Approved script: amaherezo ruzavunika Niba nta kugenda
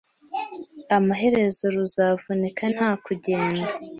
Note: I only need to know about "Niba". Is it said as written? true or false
false